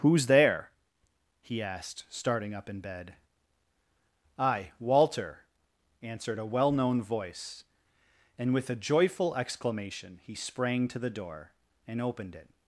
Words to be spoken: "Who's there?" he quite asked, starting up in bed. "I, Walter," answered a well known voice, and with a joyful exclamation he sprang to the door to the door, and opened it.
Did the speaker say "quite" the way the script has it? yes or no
no